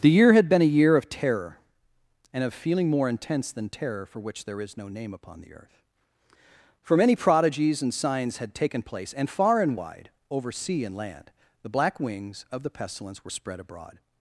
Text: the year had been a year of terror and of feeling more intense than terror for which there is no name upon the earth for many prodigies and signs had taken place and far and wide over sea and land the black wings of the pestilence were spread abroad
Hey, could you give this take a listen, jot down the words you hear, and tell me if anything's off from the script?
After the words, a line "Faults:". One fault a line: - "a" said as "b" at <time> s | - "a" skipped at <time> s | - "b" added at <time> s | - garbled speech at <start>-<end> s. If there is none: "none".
the year had been a year of terror and of feeling more intense than terror for which there is no name upon the earth for many prodigies and signs had taken place and far and wide over sea and land the black wings of the pestilence were spread abroad
Faults:
none